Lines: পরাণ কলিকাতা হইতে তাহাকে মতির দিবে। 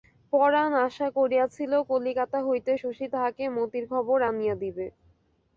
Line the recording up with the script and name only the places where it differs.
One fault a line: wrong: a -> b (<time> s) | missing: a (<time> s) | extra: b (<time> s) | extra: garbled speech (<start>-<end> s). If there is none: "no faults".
extra: আশা করিয়াছিল (0.9 s)
extra: শশী (2.7 s)
extra: খবর আনিয়া (3.9 s)